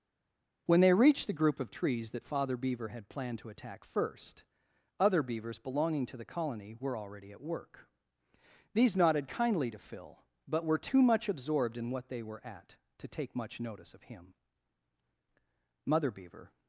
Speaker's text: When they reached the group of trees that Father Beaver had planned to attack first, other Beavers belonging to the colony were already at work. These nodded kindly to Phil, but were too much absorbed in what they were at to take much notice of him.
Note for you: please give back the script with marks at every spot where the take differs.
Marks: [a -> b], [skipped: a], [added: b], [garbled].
When they reached the group of trees that Father Beaver had planned to attack first, other Beavers belonging to the colony were already at work. These nodded kindly to Phil, but were too much absorbed in what they were at to take much notice of him. [added: Mother Beaver]